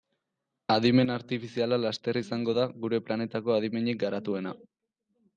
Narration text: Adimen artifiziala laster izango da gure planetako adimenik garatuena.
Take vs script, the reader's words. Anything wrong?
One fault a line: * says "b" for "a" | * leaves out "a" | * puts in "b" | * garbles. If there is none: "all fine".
all fine